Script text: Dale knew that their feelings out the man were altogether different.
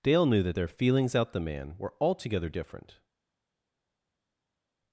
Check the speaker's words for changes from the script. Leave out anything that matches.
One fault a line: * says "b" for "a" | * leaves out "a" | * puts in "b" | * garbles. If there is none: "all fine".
all fine